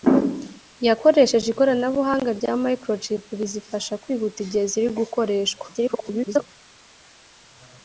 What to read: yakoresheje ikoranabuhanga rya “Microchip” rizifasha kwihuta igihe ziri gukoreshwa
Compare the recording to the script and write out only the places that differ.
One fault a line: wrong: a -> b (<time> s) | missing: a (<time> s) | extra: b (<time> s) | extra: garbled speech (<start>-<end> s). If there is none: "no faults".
extra: garbled speech (5.7-6.5 s)